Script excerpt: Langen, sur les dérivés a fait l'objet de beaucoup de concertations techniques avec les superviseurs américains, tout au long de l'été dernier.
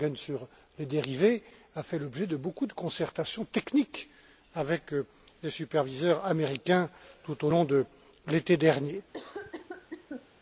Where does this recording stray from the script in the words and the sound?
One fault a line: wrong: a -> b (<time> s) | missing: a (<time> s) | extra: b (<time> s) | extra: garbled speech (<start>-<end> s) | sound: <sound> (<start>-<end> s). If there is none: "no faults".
sound: cough (9.1-10.3 s)